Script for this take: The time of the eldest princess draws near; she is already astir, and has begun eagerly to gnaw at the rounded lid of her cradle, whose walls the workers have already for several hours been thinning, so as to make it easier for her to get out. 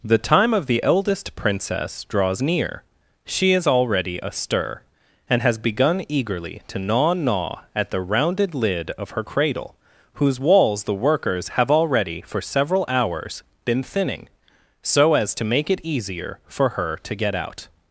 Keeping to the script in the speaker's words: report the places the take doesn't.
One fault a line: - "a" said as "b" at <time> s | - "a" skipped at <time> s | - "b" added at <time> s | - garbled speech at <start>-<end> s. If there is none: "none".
- "gnaw" added at 7.1 s